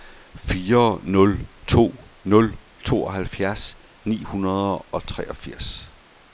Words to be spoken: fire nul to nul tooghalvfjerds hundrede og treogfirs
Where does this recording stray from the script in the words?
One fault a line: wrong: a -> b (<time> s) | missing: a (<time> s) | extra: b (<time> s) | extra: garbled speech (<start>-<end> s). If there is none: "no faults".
extra: ni (4.0 s)